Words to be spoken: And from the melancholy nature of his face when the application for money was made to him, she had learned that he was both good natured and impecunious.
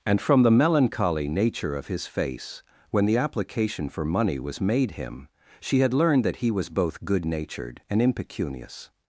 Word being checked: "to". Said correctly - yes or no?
no